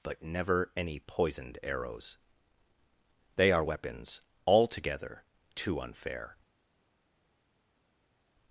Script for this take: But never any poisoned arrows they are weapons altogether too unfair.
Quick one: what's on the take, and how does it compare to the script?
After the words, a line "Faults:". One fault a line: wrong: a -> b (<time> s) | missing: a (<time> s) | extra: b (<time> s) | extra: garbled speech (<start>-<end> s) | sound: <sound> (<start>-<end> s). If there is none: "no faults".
But never any poisoned arrows they are weapons altogether too unfair.
Faults:
no faults